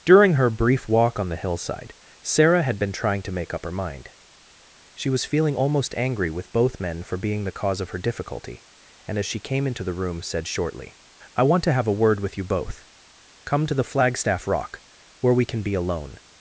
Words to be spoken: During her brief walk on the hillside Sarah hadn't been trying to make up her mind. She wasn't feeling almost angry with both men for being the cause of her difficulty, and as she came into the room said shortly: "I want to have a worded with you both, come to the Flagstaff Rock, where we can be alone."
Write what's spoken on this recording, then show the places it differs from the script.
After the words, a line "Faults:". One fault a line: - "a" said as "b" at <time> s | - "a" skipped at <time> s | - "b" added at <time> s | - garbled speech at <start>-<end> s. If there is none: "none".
During her brief walk on the hillside Sarah had been trying to make up her mind. She was feeling almost angry with both men for being the cause of her difficulty, and as she came into the room said shortly: "I want to have a word with you both, come to the Flagstaff Rock, where we can be alone."
Faults:
- "hadn't" said as "had" at 2.6 s
- "wasn't" said as "was" at 5.1 s
- "worded" said as "word" at 12.0 s